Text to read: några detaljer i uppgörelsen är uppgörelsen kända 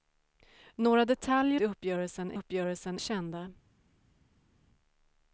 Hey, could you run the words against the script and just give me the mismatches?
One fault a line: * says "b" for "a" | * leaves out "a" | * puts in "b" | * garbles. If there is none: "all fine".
all fine